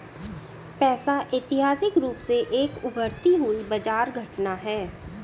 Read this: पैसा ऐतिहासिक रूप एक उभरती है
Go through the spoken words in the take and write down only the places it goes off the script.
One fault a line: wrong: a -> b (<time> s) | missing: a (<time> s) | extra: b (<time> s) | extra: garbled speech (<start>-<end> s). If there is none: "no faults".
extra: से (2.2 s)
extra: हुई बाजार घटना (3.4 s)